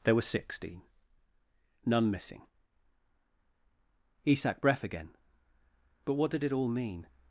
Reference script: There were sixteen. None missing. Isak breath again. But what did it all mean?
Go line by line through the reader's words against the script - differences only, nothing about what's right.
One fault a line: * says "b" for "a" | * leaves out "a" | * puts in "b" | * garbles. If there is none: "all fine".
all fine